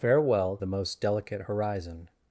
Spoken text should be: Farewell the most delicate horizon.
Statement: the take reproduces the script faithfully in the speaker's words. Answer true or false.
true